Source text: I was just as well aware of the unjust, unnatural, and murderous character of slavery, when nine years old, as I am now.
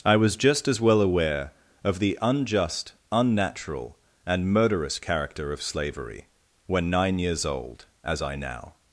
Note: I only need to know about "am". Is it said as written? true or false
false